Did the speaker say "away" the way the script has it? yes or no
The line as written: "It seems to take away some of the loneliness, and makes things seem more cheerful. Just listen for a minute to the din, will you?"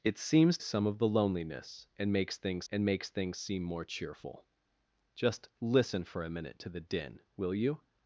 no